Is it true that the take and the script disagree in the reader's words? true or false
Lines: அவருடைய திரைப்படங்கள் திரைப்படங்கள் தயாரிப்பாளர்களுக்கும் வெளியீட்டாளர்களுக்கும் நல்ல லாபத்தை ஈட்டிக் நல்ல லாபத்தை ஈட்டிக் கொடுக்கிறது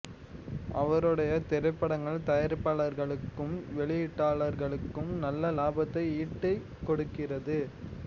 true